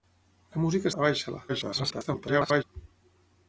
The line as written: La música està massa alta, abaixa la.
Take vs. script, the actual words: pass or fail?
fail